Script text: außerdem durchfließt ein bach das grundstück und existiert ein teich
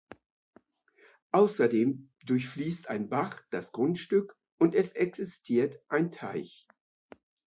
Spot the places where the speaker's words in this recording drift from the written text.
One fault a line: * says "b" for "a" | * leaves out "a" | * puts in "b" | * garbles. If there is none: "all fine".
* puts in "es"